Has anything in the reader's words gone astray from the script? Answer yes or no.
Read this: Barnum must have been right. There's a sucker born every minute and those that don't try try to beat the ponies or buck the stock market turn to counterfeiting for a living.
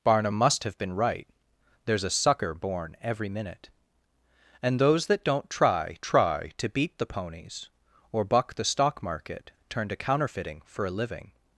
no